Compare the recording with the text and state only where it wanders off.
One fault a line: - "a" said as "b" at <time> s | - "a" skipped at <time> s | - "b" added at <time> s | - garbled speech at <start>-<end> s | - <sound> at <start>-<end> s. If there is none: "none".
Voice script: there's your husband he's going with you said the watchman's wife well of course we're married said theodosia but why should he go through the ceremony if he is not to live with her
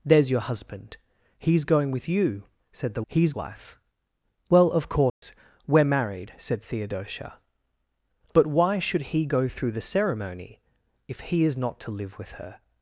- "watchman's" said as "he's" at 3.1 s
- dropout at 5.1-5.2 s